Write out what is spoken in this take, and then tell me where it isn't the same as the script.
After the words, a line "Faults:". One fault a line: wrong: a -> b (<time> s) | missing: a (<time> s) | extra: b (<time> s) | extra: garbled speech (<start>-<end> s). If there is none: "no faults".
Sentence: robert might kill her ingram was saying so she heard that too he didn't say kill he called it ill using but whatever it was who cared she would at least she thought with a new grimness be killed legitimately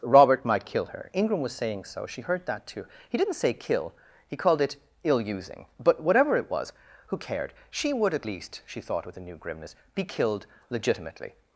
robert might kill her ingram was saying so she heard that too he didn't say kill he called it ill using but whatever it was who cared she would at least she thought with a new grimness be killed legitimately
Faults:
no faults